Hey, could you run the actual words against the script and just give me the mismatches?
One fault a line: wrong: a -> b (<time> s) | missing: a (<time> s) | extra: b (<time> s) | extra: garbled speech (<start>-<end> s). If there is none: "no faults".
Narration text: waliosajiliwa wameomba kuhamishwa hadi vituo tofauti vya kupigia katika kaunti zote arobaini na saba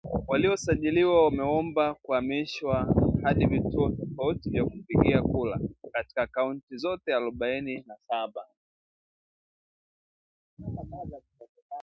extra: kura (5.2 s)